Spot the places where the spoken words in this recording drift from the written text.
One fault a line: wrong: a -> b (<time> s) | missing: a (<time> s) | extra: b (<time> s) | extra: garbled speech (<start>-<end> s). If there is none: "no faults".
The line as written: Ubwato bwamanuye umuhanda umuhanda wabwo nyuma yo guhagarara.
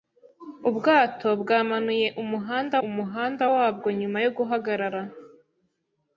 no faults